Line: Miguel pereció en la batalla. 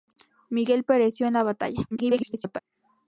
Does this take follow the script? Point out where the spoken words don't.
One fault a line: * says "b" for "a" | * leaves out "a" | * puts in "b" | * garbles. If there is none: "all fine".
* garbles